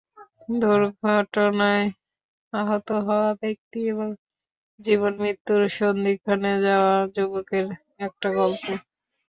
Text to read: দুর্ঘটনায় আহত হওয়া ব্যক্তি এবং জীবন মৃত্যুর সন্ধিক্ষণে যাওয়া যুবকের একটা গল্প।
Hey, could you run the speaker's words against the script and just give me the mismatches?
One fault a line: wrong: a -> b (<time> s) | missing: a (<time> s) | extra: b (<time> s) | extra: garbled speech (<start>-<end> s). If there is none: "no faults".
no faults